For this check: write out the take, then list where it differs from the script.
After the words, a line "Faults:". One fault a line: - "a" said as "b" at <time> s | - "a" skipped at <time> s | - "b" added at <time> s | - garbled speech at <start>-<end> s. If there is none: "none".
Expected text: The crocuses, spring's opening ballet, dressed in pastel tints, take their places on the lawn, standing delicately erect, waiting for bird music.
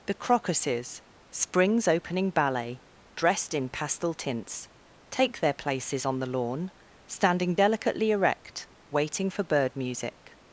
The crocuses, spring's opening ballet, dressed in pastel tints, take their places on the lawn, standing delicately erect, waiting for bird music.
Faults:
none